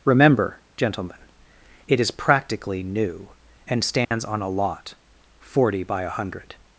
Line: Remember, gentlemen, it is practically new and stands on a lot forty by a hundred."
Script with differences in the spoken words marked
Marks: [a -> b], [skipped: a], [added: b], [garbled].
Remember, gentlemen, it is practically new and stands on a lot forty by a hundred."